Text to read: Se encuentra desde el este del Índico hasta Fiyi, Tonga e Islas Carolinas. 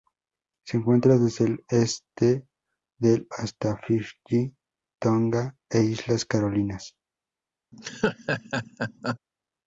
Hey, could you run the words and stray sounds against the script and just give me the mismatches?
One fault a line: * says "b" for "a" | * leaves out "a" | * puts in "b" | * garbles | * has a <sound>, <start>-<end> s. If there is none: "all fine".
* leaves out "Índico"
* has a laugh, 7.7-9.2 s